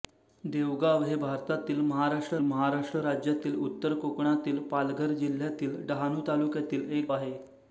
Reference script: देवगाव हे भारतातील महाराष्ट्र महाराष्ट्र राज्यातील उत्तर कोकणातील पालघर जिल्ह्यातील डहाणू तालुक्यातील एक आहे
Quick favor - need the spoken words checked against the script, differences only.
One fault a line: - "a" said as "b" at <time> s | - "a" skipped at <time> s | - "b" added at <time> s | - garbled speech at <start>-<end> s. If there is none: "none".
none